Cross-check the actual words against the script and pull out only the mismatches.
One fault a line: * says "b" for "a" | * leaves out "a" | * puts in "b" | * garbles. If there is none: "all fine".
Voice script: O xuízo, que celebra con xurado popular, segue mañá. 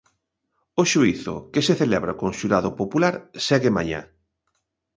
* puts in "se"